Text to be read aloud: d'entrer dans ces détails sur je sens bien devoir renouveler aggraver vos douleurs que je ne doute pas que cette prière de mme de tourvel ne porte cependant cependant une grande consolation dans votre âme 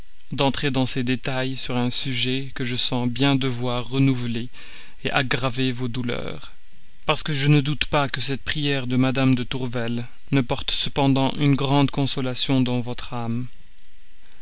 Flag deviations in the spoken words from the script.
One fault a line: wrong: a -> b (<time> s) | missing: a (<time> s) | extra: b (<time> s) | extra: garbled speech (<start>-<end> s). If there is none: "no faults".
extra: un sujet que (1.8 s)
extra: parce (7.1 s)
missing: cependant (11.3 s)